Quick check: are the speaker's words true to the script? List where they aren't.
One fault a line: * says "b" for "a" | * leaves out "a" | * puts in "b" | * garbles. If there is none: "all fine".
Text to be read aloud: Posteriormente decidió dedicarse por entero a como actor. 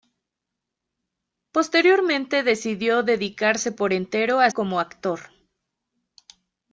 all fine